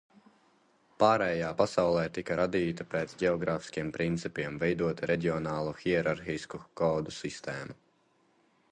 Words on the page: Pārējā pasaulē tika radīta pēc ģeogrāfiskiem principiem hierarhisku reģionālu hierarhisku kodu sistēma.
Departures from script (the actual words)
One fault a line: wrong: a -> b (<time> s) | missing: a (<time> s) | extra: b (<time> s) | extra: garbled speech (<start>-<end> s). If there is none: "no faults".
wrong: hierarhisku -> veidota (4.7 s)